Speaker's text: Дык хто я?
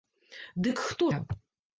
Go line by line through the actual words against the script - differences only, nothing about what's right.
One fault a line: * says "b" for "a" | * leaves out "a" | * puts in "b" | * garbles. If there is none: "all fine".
all fine